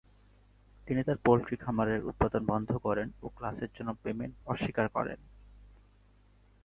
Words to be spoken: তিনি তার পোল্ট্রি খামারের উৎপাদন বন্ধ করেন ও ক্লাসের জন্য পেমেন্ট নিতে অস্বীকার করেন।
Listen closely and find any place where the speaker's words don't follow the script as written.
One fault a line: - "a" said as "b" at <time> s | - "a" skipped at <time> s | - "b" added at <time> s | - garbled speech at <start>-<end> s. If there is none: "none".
- "নিতে" skipped at 4.4 s